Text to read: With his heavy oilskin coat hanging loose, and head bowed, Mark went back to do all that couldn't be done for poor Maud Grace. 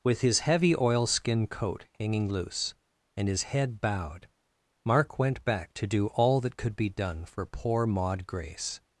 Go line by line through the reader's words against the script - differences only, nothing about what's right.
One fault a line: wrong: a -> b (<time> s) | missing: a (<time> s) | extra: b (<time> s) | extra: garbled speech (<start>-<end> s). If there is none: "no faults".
extra: his (3.3 s)
wrong: couldn't -> could (6.6 s)